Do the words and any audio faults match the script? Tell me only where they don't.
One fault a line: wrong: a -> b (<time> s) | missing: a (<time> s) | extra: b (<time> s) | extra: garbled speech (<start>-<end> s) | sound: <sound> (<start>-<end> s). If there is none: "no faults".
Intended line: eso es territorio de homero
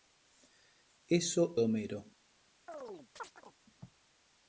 missing: es territorio (1.6 s)
sound: chirp (2.7-3.6 s)